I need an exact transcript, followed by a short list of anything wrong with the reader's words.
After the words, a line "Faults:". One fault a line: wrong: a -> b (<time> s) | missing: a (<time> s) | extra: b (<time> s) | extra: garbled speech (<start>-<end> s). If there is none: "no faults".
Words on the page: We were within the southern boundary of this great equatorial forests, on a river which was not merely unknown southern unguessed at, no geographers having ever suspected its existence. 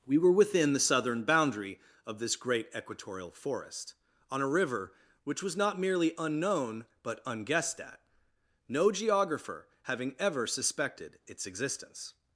We were within the southern boundary of this great equatorial forest, on a river which was not merely unknown but unguessed at, no geographer having ever suspected its existence.
Faults:
wrong: forests -> forest (3.3 s)
wrong: southern -> but (7.0 s)
wrong: geographers -> geographer (8.9 s)